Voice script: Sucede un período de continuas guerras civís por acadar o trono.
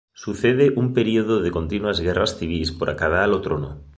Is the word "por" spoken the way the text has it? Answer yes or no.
yes